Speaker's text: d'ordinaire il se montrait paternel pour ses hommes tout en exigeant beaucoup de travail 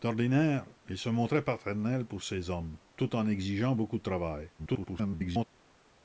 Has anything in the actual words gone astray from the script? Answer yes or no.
yes